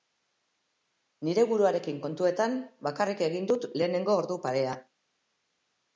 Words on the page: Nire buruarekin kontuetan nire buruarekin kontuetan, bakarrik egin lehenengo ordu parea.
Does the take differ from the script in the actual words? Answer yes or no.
yes